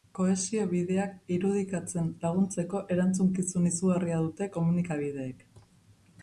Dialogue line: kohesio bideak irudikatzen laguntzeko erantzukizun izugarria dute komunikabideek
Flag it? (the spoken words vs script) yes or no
no